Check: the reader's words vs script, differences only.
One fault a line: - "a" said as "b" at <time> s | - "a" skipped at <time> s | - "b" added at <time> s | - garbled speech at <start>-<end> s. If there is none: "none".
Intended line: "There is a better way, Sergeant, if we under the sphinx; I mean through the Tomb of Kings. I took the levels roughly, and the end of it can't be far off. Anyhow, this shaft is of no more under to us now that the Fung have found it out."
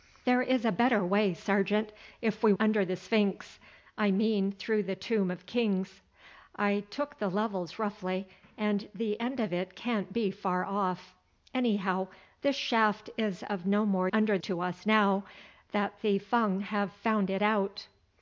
none